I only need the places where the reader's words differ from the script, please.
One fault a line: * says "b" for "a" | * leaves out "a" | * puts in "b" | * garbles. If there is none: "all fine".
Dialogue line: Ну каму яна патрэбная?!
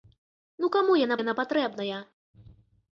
* puts in "яна"